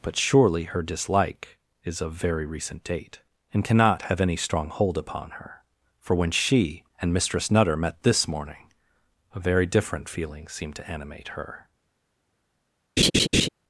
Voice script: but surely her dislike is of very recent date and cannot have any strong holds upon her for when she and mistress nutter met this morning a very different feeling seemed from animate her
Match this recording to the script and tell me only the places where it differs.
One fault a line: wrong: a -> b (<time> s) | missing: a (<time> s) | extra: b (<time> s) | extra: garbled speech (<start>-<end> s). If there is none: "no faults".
wrong: holds -> hold (4.7 s)
wrong: from -> to (10.8 s)